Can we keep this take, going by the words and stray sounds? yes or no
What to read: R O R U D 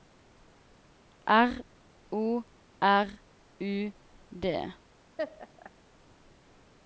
no